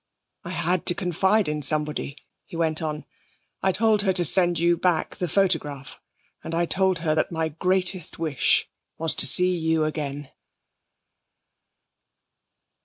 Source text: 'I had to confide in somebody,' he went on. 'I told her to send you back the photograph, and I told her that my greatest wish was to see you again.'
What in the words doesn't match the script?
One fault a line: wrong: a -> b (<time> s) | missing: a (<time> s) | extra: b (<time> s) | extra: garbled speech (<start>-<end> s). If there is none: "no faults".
no faults